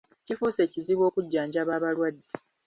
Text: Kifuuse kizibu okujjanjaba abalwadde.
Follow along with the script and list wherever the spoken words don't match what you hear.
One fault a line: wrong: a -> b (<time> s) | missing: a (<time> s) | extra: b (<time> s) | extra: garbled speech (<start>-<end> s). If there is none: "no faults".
no faults